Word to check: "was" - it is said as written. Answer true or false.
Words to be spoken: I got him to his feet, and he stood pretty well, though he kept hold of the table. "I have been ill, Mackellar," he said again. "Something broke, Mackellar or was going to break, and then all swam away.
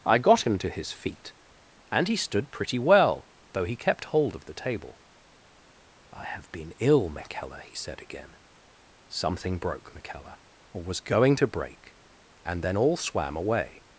true